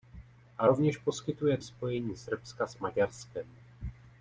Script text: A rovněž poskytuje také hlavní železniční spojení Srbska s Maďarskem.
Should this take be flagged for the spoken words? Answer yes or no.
yes